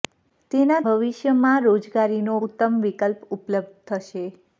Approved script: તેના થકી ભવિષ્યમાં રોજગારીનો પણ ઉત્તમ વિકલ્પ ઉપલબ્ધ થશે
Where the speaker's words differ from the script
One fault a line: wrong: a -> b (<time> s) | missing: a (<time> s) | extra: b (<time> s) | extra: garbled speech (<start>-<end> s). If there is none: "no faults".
missing: થકી (0.8 s)
missing: પણ (2.4 s)